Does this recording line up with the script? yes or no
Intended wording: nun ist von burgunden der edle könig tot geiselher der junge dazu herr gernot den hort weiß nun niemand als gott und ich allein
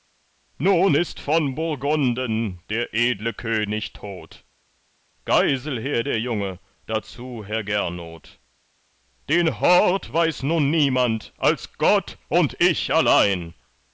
yes